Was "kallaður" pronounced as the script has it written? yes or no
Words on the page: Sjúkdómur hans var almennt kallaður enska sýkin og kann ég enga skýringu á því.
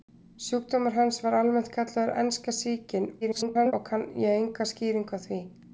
yes